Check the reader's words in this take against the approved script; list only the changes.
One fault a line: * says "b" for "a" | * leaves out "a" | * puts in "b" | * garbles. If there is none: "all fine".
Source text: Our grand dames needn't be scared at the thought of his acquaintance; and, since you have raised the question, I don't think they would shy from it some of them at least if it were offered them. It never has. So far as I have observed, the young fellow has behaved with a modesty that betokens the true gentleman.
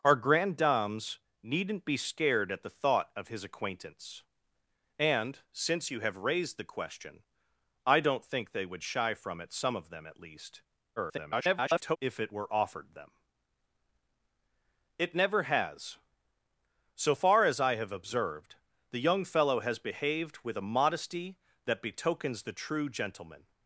* garbles